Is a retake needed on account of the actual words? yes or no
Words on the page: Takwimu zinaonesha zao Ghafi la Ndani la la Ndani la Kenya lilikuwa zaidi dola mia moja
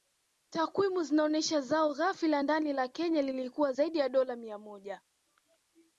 yes